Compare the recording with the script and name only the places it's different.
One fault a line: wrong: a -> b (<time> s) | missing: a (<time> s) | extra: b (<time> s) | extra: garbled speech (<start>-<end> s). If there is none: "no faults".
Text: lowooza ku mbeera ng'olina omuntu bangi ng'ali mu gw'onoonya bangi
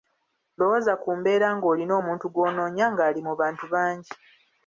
wrong: bangi -> gw'onoonya (2.3 s)
wrong: gw'onoonya -> bantu (3.4 s)